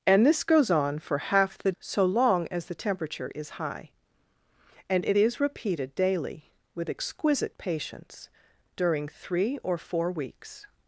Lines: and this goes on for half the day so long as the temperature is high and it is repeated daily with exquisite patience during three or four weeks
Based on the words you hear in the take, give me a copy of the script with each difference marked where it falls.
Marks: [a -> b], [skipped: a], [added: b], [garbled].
and this goes on for half the [skipped: day] so long as the temperature is high and it is repeated daily with exquisite patience during three or four weeks